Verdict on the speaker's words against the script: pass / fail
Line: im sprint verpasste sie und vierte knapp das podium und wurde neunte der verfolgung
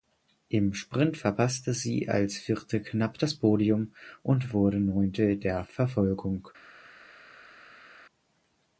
fail